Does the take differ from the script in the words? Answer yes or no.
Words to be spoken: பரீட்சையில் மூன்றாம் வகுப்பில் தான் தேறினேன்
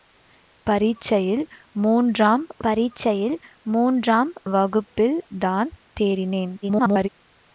yes